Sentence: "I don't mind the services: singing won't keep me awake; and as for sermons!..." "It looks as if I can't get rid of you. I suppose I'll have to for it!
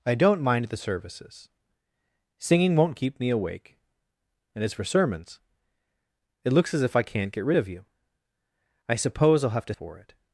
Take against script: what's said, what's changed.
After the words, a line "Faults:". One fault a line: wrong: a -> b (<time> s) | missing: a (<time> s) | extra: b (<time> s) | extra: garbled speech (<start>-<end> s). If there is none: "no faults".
"I don't mind the services: singing won't keep me awake; and as for sermons!..." "It looks as if I can't get rid of you. I suppose I'll have to for it!
Faults:
no faults